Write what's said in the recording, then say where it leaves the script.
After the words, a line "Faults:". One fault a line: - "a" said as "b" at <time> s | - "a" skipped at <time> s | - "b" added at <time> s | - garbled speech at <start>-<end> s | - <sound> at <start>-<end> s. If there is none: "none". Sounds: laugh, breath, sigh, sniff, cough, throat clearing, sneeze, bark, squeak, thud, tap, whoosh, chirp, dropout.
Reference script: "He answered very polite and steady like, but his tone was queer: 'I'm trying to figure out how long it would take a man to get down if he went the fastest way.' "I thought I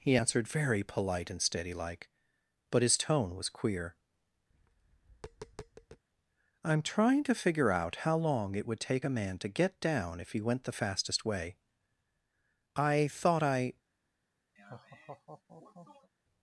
"He answered very polite and steady like, but his tone was queer: 'I'm trying to figure out how long it would take a man to get down if he went the fastest way.' "I thought I
Faults:
- tap at 4.5-6.0 s
- laugh at 14.6-16.1 s